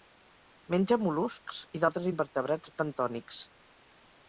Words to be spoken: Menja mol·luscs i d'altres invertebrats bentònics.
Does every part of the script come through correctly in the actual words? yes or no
yes